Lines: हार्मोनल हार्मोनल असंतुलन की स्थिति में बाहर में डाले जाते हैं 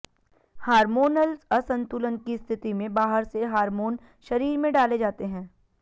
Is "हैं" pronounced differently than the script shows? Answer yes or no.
no